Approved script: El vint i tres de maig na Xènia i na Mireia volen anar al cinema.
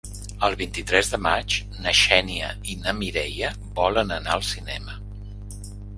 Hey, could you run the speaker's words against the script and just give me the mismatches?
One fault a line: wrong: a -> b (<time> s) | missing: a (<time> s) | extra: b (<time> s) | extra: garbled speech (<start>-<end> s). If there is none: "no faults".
no faults